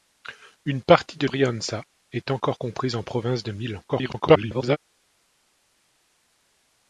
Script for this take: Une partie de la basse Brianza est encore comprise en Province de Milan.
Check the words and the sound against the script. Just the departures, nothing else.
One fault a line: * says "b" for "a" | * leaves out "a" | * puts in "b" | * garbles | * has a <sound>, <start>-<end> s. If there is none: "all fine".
* leaves out "la basse"
* garbles